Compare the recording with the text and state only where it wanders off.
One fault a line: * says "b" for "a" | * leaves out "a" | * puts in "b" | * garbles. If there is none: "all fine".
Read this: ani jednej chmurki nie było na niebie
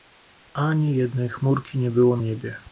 * leaves out "na"